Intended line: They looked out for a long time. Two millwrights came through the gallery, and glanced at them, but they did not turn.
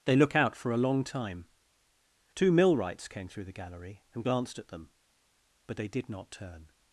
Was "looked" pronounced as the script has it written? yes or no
no